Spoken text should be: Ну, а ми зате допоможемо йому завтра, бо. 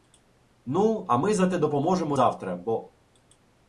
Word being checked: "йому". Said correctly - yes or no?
no